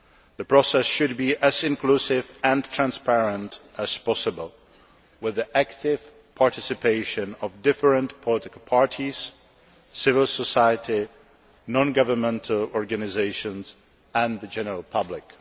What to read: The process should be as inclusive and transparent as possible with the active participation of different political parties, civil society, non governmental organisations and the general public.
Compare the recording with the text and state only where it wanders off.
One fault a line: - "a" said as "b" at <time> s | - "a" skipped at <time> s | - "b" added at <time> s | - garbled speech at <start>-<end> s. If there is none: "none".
none